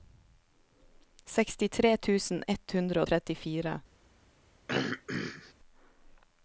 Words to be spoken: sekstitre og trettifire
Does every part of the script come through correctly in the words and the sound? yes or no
no